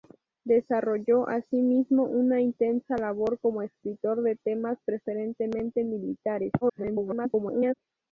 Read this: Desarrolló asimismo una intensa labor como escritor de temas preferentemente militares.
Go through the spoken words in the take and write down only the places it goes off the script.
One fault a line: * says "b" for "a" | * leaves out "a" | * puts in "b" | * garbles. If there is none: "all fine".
* garbles